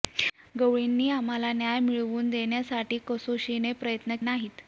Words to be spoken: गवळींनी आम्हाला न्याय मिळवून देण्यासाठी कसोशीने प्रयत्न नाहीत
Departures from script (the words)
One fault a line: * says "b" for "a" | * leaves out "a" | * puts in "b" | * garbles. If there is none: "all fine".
all fine